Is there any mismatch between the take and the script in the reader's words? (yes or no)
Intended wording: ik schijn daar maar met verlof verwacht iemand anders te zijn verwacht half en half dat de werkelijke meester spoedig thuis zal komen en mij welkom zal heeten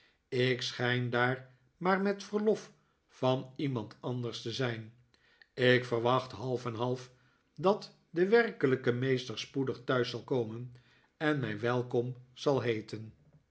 yes